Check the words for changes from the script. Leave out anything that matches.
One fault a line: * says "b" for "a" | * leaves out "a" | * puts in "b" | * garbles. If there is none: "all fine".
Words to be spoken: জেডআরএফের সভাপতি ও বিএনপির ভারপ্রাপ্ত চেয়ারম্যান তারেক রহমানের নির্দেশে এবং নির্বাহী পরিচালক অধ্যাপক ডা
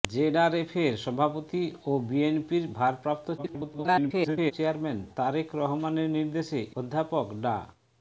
* garbles
* leaves out "এবং নির্বাহী পরিচালক"